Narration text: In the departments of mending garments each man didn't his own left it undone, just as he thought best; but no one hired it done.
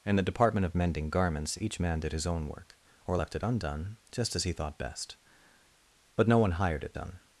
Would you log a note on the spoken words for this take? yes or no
yes